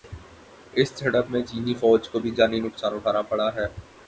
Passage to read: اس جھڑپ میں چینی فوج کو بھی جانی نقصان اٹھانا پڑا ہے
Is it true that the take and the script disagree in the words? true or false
false